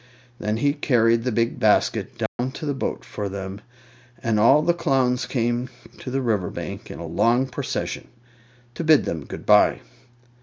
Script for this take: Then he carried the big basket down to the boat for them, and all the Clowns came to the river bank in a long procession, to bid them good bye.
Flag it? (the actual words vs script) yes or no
no